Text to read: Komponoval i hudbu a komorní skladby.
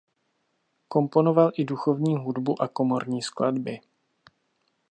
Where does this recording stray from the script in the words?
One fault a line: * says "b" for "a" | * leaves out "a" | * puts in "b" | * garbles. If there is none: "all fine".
* puts in "duchovní"